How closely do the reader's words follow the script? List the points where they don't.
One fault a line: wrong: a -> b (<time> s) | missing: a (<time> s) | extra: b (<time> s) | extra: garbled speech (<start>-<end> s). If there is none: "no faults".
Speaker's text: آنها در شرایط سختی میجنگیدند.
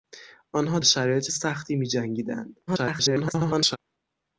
missing: در (0.8 s)
extra: garbled speech (2.7-3.8 s)